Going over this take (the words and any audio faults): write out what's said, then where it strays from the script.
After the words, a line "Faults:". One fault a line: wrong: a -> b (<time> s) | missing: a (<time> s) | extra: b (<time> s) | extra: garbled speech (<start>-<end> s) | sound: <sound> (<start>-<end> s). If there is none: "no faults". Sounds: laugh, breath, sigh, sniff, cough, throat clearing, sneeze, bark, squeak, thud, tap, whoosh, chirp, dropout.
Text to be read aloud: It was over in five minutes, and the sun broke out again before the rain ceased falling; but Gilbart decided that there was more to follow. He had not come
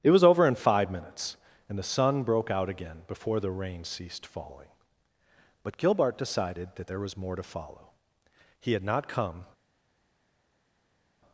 It was over in five minutes, and the sun broke out again before the rain ceased falling; but Gilbart decided that there was more to follow. He had not come
Faults:
no faults